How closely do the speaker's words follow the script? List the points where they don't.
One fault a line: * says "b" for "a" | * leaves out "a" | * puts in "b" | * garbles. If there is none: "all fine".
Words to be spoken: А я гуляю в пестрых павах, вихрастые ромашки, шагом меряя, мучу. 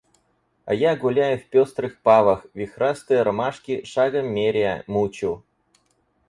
all fine